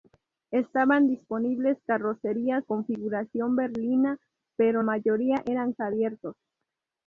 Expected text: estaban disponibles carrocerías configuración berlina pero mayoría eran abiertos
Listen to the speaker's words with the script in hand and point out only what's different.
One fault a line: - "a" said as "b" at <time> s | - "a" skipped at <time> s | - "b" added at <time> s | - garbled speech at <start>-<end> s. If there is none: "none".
none